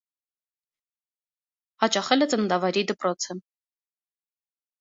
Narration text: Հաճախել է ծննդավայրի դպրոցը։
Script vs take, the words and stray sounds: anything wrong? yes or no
no